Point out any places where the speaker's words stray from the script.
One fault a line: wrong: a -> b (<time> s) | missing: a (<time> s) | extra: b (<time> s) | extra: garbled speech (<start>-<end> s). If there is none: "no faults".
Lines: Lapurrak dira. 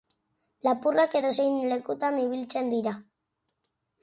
extra: edozein lekutan ibiltzen (1.2 s)